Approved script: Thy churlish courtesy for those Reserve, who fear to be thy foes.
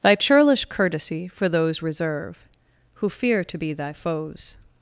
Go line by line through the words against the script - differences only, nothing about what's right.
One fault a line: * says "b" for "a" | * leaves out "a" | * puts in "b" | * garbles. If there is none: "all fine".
all fine